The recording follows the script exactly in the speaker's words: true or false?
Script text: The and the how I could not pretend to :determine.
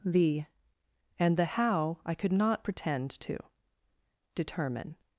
true